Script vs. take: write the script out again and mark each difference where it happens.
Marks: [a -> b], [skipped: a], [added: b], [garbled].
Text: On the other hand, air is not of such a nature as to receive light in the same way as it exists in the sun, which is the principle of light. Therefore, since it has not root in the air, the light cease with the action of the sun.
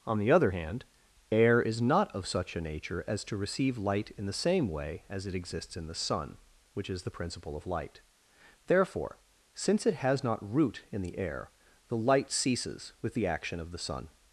On the other hand, air is not of such a nature as to receive light in the same way as it exists in the sun, which is the principle of light. Therefore, since it has not root in the air, the light [cease -> ceases] with the action of the sun.